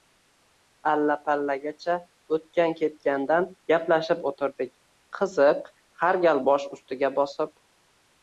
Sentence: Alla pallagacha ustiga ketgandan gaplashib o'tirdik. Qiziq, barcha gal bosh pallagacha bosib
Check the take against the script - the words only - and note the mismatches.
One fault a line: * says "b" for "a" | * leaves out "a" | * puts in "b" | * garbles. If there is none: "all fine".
* says "o'tgan" for "ustiga"
* says "har" for "barcha"
* says "ustiga" for "pallagacha"